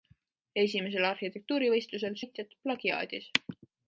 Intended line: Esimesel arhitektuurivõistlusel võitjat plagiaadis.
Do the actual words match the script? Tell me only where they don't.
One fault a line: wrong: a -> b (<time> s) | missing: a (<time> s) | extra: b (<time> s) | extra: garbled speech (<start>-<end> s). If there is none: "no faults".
no faults